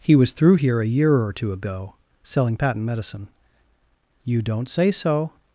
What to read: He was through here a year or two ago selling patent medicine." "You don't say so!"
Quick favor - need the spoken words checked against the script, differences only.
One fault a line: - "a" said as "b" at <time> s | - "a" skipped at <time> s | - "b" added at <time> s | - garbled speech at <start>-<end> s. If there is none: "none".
none